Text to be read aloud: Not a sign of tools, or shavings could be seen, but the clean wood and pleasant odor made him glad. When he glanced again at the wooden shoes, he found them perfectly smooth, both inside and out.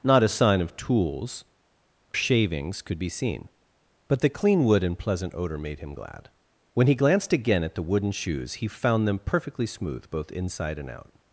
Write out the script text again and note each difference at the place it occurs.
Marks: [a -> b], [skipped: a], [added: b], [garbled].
Not a sign of tools, [skipped: or] shavings could be seen, but the clean wood and pleasant odor made him glad. When he glanced again at the wooden shoes, he found them perfectly smooth, both inside and out.